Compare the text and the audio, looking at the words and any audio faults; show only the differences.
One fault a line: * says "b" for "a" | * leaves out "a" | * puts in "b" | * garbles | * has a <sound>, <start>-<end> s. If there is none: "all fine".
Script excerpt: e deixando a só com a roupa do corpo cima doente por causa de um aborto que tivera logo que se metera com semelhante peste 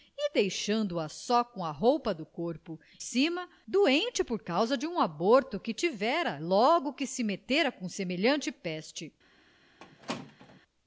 * has a squeak, 9.8-10.6 s